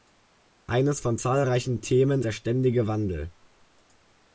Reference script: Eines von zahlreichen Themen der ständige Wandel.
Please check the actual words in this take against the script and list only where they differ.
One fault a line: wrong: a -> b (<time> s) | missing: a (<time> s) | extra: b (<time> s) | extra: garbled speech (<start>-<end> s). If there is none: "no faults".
no faults